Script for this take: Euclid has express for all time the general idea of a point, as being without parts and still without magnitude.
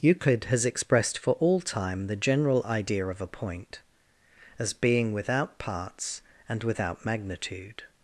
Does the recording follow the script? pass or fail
fail